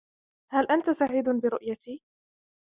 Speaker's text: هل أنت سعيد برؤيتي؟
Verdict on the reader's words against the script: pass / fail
pass